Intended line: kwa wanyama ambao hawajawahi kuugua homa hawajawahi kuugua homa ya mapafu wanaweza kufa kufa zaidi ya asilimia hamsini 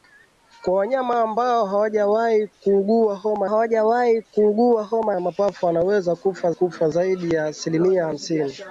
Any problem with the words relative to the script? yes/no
no